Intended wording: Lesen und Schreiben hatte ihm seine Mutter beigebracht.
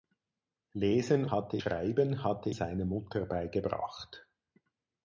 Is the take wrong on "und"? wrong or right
wrong